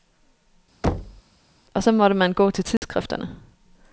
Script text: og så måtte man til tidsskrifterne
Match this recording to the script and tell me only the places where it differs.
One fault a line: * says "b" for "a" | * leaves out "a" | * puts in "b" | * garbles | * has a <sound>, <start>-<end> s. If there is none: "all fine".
* has a thud, 0.8-1.2 s
* puts in "gå"
* has a dropout, 2.8-2.8 s